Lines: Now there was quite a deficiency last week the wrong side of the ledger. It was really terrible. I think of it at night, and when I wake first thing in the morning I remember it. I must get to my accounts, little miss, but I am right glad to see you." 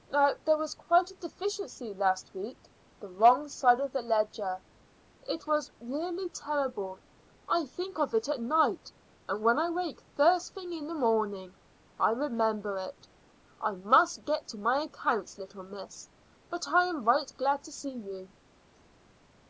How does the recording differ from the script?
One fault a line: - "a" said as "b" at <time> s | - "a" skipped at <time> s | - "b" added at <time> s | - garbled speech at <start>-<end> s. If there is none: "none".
none